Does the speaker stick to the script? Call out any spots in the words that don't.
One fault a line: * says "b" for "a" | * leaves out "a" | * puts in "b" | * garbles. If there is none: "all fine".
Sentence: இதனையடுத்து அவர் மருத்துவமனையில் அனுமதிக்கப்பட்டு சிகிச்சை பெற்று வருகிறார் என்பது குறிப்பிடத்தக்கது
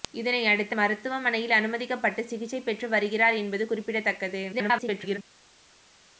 * leaves out "அவர்"
* garbles